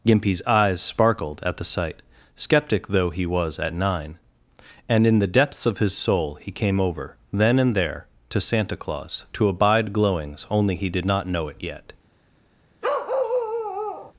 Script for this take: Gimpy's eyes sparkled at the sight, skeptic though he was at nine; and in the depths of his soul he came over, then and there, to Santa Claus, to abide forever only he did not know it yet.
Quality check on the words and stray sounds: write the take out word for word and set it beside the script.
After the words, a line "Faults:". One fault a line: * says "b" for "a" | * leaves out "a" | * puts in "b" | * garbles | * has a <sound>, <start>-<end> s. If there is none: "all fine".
Gimpy's eyes sparkled at the sight, skeptic though he was at nine; and in the depths of his soul he came over, then and there, to Santa Claus, to abide glowings only he did not know it yet.
Faults:
* says "glowings" for "forever"
* has a bark, 12.8-14.1 s